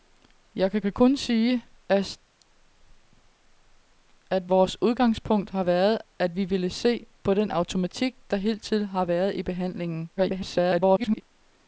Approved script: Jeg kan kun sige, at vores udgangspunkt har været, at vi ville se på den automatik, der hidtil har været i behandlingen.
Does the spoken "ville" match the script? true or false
true